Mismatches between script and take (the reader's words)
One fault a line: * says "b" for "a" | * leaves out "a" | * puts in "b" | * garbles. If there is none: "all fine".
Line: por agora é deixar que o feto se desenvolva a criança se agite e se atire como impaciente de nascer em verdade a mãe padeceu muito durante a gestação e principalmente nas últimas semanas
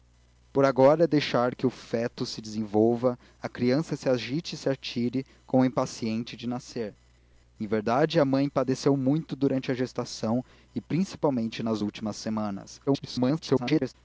* garbles